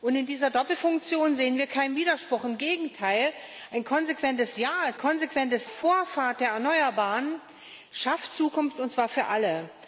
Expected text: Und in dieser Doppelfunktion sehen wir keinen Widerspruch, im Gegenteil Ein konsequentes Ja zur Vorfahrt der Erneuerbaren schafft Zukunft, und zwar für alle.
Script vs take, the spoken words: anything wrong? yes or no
yes